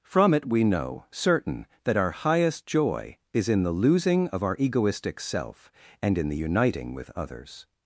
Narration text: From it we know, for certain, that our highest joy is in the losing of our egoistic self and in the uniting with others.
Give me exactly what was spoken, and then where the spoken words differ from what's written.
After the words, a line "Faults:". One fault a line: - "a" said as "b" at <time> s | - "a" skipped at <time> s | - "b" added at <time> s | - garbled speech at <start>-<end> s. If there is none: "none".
From it we know, certain, that our highest joy is in the losing of our egoistic self and in the uniting with others.
Faults:
- "for" skipped at 1.1 s